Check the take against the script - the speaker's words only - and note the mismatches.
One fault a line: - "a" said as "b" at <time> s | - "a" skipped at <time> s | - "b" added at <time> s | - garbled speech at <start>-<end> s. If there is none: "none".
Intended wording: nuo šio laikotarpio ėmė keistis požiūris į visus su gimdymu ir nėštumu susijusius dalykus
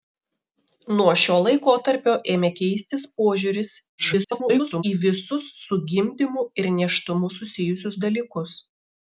- garbled speech at 4.0-4.8 s